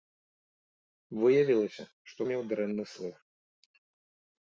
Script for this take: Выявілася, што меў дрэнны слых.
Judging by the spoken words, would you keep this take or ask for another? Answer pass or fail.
pass